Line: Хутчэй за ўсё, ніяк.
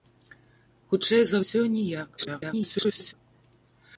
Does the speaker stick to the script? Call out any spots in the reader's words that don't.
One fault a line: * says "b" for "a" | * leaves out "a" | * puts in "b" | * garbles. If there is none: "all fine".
* garbles